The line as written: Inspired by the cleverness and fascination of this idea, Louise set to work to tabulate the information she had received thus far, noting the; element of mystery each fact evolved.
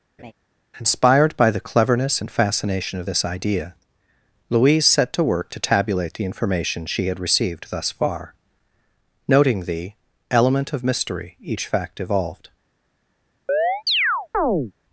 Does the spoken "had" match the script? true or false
true